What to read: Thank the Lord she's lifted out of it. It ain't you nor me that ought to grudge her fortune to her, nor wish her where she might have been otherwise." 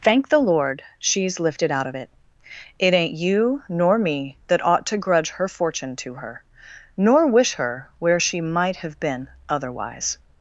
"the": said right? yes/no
yes